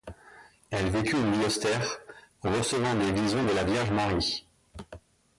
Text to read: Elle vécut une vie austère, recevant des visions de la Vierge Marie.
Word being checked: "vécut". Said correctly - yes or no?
yes